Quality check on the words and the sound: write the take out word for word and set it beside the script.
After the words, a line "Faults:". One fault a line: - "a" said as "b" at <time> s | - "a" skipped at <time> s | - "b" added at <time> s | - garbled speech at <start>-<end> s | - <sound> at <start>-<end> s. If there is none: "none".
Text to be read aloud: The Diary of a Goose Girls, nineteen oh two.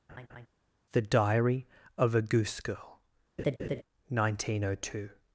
The Diary of a Goose Girl, nineteen oh two.
Faults:
- laugh at 0.1-0.5 s
- "Girls" said as "Girl" at 2.6 s
- laugh at 3.4-3.8 s